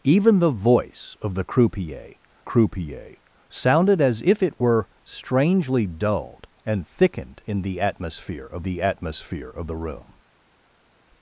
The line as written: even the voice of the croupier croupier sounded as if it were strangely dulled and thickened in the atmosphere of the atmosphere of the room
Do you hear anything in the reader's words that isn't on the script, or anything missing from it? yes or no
no